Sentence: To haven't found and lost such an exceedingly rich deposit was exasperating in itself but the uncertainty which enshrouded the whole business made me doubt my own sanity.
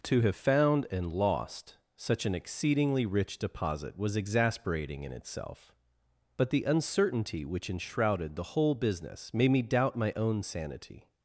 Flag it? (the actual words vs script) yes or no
yes